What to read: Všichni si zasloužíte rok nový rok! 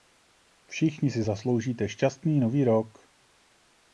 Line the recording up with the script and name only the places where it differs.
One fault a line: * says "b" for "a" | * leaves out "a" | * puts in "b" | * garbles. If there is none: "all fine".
* says "šťastný" for "rok"